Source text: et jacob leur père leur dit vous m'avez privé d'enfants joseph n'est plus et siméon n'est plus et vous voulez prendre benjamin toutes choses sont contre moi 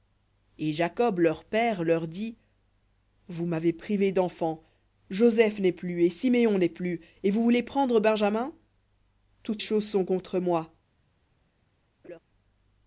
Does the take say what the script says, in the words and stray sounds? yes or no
no